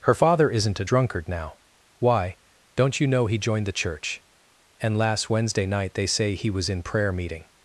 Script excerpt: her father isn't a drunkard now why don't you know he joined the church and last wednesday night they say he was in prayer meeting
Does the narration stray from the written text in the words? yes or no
no